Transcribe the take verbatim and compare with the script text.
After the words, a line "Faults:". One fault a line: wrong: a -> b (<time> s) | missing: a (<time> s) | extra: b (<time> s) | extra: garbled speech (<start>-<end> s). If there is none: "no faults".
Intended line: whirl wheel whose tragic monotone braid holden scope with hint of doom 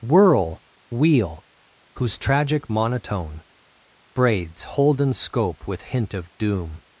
whirl wheel whose tragic monotone braids holden scope with hint of doom
Faults:
wrong: braid -> braids (4.1 s)